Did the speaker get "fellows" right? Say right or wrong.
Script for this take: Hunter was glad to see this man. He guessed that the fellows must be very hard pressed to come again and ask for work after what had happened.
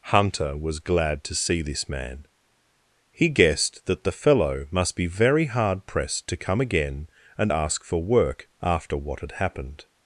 wrong